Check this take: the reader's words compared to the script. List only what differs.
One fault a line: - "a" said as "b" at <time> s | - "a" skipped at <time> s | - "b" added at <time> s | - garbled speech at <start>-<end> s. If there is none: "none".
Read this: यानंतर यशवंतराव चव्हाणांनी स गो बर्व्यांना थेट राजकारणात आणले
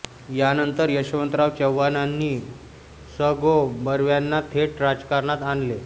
none